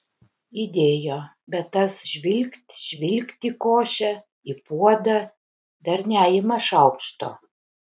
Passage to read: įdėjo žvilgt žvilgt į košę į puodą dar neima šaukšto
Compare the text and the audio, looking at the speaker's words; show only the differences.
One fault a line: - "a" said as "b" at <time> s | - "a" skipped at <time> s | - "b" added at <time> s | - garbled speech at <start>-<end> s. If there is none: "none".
- "bet tas" added at 1.5 s